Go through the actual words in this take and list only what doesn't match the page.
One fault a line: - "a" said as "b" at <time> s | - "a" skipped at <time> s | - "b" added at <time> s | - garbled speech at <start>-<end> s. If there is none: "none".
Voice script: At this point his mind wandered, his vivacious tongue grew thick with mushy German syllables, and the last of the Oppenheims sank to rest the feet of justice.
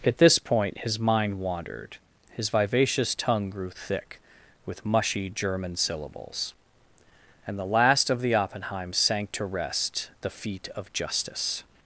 none